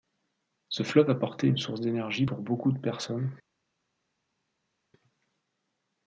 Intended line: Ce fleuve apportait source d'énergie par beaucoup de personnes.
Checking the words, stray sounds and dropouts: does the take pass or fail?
fail